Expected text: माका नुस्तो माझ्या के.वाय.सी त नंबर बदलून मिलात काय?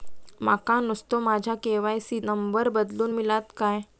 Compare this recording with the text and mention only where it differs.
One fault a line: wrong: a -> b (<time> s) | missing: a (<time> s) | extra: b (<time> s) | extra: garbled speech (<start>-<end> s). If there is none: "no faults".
missing: त (2.2 s)